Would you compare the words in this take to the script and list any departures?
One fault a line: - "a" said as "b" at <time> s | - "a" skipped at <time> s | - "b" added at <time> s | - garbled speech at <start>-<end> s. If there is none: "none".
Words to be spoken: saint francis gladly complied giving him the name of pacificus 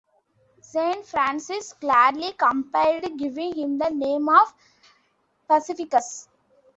none